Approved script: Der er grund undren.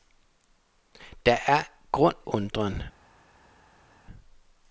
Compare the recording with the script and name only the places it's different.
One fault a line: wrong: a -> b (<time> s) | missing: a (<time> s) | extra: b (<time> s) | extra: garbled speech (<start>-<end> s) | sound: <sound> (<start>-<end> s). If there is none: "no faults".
no faults